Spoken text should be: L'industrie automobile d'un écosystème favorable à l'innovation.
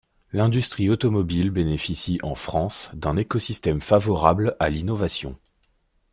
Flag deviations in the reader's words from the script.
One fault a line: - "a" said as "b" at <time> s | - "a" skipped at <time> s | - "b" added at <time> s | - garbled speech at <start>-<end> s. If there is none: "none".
- "bénéficie en France" added at 1.5 s